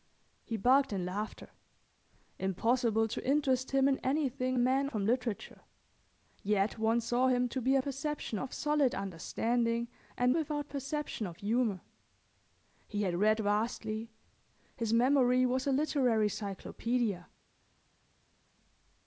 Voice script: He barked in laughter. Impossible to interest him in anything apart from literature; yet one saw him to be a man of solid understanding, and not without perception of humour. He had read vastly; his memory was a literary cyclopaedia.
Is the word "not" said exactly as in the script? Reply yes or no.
no